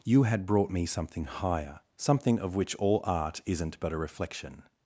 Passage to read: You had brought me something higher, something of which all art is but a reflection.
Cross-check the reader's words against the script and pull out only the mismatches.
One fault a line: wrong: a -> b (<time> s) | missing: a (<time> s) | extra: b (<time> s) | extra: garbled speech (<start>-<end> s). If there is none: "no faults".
wrong: is -> isn't (3.5 s)